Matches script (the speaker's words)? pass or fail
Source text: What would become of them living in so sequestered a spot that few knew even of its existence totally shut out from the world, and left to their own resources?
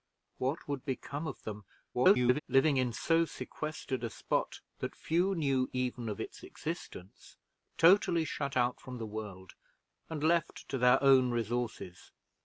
fail